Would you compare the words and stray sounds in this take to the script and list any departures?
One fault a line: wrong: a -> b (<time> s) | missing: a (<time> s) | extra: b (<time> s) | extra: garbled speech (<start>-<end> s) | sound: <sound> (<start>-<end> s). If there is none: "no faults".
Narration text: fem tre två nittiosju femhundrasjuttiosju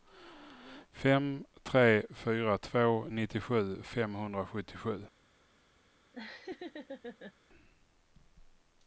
extra: fyra (2.1 s)
sound: laugh (6.1-7.3 s)